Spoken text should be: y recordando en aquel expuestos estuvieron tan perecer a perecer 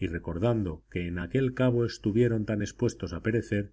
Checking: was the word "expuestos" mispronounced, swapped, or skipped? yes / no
yes